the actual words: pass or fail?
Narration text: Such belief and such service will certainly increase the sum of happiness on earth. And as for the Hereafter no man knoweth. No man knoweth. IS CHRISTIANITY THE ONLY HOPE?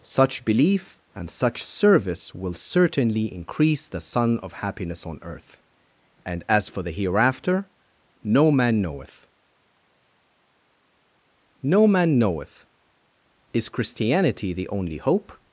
fail